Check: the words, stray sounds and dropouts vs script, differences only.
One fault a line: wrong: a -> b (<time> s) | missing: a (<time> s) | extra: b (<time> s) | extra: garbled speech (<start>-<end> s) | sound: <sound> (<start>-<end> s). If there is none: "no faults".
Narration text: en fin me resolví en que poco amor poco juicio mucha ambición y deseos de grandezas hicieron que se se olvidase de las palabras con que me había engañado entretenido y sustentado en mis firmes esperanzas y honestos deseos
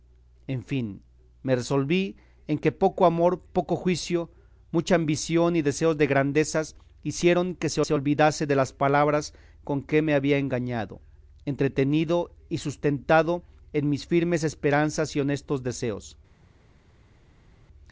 no faults